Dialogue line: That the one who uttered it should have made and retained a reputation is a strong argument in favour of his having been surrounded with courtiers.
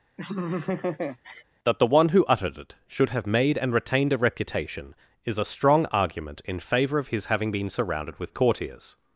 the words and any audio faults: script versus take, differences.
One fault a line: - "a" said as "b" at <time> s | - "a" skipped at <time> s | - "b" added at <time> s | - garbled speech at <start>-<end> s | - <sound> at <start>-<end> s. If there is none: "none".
- laugh at 0.2-1.4 s